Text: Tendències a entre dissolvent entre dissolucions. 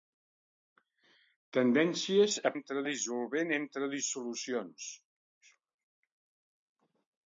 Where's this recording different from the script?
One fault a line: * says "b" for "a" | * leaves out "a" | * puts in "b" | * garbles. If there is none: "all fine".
all fine